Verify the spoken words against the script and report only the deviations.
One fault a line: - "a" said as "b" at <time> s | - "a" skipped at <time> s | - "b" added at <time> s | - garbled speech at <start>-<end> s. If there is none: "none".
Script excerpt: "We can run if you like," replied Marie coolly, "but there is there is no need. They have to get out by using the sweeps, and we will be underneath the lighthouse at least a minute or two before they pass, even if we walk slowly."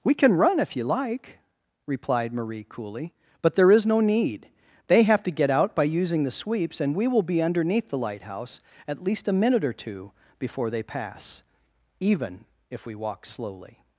- "there is" skipped at 3.9 s